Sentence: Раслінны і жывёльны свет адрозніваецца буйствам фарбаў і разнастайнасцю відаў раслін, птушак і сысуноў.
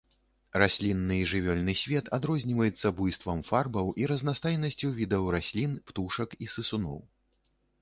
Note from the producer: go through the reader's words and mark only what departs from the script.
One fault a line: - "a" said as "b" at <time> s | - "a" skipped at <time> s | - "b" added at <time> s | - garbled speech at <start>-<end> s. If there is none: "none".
none